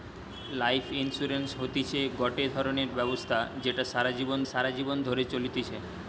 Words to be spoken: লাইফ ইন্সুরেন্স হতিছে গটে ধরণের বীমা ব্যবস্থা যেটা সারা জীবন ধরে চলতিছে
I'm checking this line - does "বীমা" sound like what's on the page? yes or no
no